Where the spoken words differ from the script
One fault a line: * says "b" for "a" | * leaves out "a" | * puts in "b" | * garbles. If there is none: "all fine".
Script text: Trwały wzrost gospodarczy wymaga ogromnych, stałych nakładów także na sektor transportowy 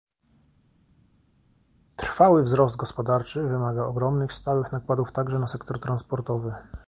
all fine